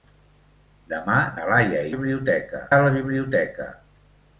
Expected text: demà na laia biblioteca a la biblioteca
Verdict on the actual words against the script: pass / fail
pass